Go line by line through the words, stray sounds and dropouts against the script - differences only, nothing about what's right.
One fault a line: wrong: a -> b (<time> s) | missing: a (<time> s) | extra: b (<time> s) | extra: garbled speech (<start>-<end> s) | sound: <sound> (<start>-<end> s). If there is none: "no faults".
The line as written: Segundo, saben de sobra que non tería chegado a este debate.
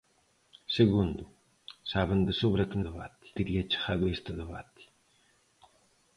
wrong: non -> debate (2.9 s)